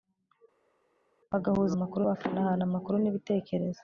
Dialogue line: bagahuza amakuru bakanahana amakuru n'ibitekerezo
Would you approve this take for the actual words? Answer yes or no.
yes